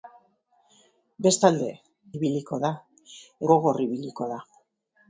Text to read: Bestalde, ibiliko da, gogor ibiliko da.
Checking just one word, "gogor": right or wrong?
right